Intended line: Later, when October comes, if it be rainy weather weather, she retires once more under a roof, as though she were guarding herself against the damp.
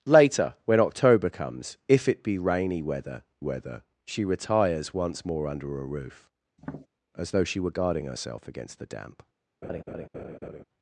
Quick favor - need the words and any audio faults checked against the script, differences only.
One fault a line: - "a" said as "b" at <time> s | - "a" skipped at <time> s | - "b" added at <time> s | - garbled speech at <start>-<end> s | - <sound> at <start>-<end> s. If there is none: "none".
- tap at 6.6-6.9 s
- laugh at 9.6-10.6 s